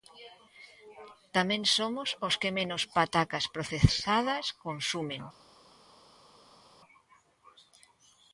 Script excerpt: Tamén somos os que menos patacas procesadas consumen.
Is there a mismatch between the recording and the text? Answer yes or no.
no